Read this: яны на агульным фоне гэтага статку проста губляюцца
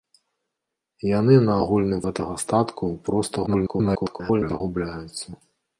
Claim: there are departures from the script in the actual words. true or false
true